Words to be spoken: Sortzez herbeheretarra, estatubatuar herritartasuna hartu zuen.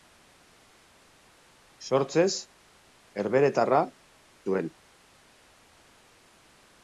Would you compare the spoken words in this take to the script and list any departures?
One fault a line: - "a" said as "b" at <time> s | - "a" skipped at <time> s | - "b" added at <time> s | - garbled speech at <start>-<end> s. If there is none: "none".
- "estatubatuar herritartasuna hartu" skipped at 3.8 s